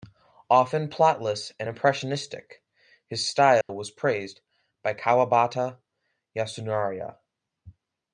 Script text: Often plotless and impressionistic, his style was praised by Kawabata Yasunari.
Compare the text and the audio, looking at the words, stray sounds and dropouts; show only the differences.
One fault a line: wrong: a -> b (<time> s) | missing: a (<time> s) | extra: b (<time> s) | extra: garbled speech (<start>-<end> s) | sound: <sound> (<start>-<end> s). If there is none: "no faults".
sound: dropout (3.6-3.7 s)